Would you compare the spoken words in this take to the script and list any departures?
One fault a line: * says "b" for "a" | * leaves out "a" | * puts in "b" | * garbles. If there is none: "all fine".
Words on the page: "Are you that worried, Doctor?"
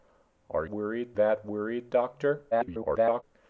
* says "worried" for "you"
* garbles